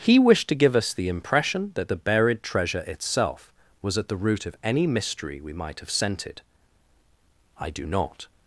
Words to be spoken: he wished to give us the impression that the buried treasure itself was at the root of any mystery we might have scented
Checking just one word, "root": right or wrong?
right